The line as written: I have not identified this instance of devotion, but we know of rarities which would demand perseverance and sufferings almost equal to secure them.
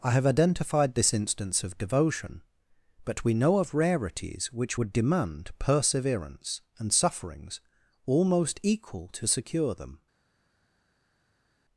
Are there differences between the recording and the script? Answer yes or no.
yes